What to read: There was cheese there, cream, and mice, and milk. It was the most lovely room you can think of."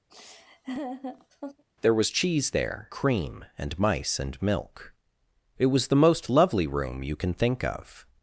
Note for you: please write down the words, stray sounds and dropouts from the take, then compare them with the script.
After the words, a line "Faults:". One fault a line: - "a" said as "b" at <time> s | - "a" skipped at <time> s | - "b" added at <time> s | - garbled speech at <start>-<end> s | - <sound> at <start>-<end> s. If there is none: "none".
There was cheese there, cream, and mice, and milk. It was the most lovely room you can think of."
Faults:
- laugh at 0.1-1.6 s